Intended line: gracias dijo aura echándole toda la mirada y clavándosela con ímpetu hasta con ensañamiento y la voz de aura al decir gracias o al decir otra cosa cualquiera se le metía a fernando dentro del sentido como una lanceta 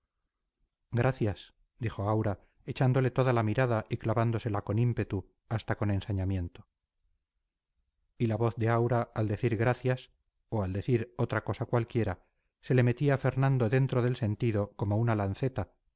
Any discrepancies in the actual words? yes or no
no